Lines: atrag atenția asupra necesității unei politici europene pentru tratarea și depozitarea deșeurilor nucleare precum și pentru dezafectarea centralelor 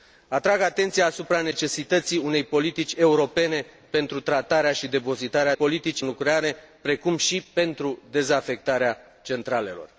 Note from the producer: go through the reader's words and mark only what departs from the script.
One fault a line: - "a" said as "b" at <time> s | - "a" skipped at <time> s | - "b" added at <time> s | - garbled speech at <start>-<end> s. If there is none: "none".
- "deșeurilor" said as "politici" at 5.5 s